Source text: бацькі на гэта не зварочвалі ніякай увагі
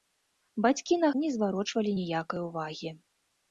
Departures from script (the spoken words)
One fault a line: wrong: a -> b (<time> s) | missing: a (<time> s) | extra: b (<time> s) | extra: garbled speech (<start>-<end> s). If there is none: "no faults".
missing: гэта (1.1 s)